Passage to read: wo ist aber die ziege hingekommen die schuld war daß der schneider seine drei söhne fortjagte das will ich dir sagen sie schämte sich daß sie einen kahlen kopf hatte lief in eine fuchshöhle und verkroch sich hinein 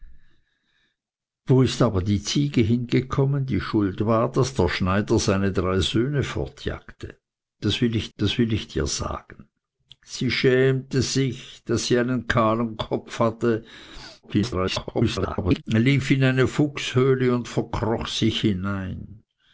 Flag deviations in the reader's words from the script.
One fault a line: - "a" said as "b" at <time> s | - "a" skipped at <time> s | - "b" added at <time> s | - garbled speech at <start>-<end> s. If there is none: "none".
- "das will ich" added at 8.2 s
- garbled speech at 14.2-15.6 s